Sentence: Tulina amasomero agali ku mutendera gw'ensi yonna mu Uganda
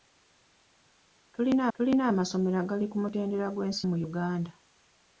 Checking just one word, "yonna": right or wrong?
wrong